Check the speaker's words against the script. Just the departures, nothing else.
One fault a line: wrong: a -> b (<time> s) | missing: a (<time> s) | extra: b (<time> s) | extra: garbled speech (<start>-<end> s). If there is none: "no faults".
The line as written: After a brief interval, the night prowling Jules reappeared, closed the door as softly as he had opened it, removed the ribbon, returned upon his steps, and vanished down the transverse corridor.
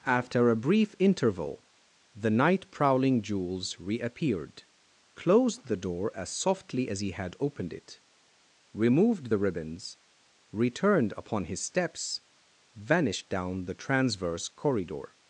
wrong: ribbon -> ribbons (9.4 s)
missing: and (12.2 s)